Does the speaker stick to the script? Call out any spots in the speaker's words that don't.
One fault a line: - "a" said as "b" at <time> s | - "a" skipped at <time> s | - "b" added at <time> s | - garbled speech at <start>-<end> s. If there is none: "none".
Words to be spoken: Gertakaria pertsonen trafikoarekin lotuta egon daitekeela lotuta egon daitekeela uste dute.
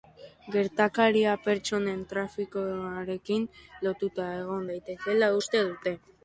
- "lotuta egon daitekeela" skipped at 5.3 s